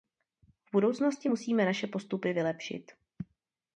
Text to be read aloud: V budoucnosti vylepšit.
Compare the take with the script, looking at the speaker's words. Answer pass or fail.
fail